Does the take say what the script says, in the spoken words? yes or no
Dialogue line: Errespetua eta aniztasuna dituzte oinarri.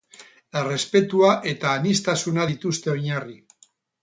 yes